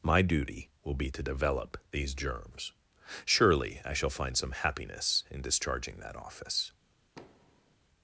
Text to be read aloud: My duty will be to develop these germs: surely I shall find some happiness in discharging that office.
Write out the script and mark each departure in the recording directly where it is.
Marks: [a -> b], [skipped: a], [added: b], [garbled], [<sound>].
My duty will be to develop these germs: surely I shall find some happiness in discharging that office. [thud]